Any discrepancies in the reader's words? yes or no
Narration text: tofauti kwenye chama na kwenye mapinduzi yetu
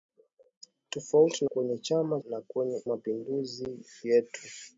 no